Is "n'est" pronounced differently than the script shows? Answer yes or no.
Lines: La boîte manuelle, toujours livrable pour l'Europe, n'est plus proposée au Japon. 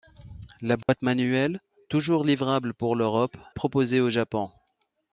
yes